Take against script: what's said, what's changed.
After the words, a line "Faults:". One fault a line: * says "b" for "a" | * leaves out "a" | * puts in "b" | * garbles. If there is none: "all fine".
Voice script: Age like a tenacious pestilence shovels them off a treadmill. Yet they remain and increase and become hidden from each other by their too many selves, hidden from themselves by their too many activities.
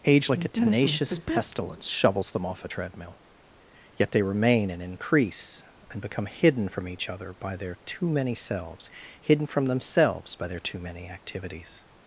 Age like a tenacious pestilence shovels them off a treadmill. Yet they remain and increase and become hidden from each other by their too many selves, hidden from themselves by their too many activities.
Faults:
all fine